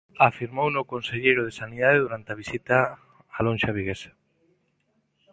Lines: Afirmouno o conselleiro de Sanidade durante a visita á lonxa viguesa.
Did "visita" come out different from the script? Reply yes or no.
no